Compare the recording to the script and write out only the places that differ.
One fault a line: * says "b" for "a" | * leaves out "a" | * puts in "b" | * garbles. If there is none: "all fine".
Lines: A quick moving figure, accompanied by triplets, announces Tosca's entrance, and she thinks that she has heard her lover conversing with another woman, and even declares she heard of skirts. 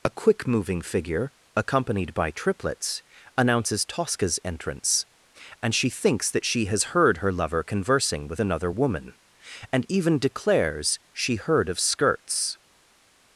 all fine